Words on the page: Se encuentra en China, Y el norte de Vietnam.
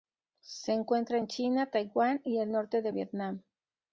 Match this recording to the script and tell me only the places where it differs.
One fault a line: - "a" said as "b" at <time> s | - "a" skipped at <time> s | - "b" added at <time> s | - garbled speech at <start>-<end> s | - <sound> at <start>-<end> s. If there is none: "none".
- "Taiwán" added at 1.7 s